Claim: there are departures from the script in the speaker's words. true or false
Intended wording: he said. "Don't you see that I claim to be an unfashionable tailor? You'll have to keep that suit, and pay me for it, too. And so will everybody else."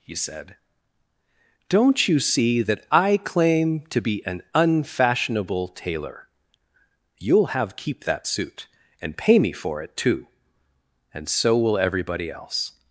true